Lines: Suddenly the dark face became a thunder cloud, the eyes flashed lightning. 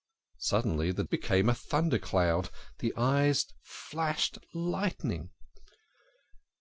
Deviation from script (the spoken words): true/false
true